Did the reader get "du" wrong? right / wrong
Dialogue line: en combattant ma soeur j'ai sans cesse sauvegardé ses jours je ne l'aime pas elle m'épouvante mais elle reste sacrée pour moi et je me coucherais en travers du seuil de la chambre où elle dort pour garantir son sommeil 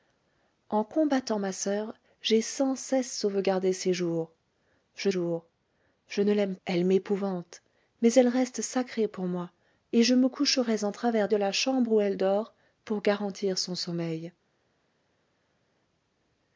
wrong